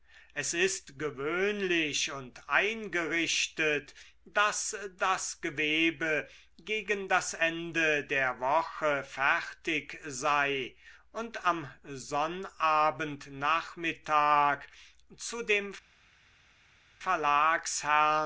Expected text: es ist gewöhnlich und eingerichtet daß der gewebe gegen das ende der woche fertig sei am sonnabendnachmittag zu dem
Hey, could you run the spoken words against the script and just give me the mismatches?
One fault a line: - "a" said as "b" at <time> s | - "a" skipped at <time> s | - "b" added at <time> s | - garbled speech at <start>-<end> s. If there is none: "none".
- "der" said as "das" at 5.0 s
- "und" added at 11.1 s